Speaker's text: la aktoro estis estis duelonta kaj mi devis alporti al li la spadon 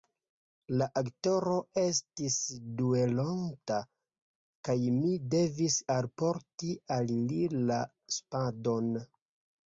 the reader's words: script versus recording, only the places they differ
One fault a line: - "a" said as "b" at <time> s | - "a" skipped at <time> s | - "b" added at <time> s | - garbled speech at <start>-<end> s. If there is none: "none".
- "estis" skipped at 2.4 s